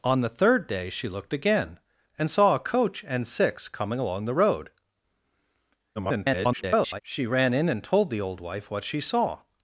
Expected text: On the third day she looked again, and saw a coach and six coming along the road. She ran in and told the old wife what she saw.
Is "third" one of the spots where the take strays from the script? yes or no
no